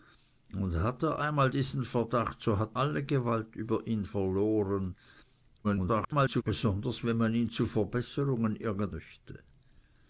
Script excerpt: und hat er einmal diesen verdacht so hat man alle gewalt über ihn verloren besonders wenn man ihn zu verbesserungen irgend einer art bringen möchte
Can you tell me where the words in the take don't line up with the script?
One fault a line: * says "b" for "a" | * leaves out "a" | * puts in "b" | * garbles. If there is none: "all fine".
* leaves out "man"
* garbles
* leaves out "einer art bringen"